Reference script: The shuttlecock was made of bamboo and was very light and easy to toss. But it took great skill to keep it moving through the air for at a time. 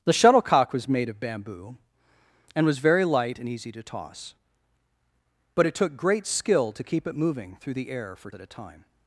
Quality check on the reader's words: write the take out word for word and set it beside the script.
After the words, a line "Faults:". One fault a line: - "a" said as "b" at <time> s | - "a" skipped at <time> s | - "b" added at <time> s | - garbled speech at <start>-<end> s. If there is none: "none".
The shuttlecock was made of bamboo and was very light and easy to toss. But it took great skill to keep it moving through the air for at a time.
Faults:
none